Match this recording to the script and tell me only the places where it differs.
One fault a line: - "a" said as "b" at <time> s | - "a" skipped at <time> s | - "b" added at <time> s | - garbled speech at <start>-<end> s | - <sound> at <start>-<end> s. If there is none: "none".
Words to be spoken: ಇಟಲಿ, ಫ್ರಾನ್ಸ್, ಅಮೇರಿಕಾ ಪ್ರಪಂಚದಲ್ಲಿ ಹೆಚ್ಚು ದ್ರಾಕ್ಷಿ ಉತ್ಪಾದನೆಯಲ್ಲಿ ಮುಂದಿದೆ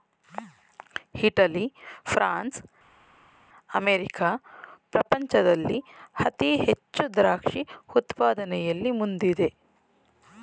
- "ಅತಿ" added at 6.2 s